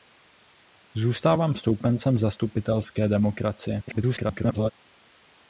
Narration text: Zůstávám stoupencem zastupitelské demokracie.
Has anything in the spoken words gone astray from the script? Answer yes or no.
yes